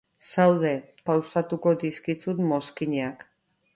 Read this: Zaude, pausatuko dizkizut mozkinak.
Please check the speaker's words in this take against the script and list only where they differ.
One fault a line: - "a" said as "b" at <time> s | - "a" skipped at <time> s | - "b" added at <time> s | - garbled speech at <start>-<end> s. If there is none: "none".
none